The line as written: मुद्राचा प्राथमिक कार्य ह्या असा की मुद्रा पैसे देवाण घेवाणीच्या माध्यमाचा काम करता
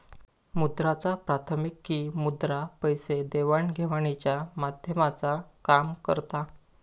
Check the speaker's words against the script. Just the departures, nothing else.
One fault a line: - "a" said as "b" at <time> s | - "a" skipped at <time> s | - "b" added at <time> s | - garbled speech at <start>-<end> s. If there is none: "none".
- "कार्य ह्या असा" skipped at 1.8 s